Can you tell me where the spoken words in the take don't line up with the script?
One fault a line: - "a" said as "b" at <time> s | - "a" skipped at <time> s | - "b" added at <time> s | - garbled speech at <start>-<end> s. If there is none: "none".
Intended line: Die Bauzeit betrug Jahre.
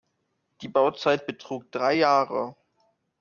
- "drei" added at 1.7 s